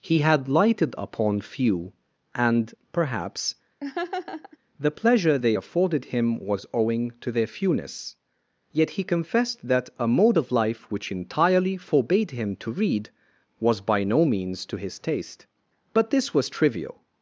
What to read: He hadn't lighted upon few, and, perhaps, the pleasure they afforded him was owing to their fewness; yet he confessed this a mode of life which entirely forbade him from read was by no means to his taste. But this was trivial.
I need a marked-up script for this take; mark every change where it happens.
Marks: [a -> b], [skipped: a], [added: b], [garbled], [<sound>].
He [hadn't -> had] lighted upon few, and, perhaps, [laugh] the pleasure they afforded him was owing to their fewness; yet he confessed [this -> that] a mode of life which entirely forbade him [from -> to] read was by no means to his taste. But this was trivial.